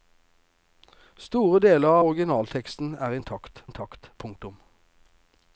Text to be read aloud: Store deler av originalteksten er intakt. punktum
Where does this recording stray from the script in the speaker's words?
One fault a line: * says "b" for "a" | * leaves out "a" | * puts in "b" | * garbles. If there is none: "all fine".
* leaves out "av"
* puts in "intakt"